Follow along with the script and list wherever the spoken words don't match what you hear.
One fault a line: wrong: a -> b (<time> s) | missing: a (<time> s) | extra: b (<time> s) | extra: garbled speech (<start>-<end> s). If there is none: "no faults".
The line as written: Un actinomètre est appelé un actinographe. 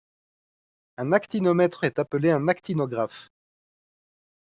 no faults